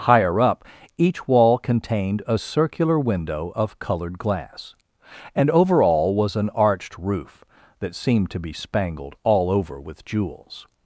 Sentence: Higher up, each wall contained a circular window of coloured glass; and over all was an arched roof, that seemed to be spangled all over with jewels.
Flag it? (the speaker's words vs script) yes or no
no